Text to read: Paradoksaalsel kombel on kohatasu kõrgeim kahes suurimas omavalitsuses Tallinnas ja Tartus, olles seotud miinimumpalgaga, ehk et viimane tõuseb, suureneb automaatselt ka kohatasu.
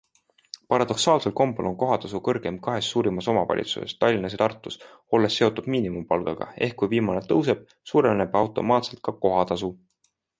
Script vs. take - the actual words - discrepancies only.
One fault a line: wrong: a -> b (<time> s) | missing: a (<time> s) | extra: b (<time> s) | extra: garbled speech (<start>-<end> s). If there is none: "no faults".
wrong: et -> kui (6.8 s)